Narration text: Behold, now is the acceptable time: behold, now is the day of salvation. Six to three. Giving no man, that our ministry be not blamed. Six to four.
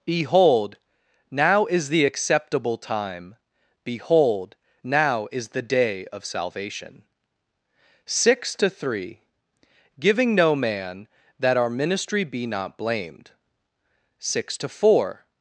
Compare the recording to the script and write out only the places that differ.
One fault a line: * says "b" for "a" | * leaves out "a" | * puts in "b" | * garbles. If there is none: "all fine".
all fine